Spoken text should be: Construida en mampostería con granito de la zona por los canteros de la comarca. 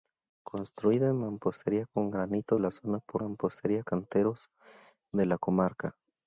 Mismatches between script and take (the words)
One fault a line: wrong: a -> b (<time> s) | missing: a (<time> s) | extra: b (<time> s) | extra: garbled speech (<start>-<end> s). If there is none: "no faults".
missing: de (2.6 s)
wrong: los -> mampostería (3.2 s)